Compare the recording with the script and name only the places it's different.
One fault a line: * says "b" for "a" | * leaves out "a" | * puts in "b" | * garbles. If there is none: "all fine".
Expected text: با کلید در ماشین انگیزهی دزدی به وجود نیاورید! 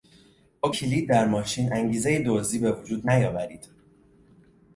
all fine